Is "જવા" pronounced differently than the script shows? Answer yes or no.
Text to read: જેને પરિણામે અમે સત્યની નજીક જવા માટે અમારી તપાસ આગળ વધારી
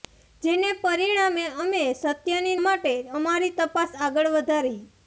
yes